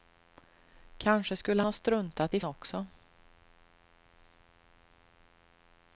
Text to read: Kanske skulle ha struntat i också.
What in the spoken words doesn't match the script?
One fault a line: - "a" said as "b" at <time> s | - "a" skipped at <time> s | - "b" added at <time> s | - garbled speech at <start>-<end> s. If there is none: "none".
none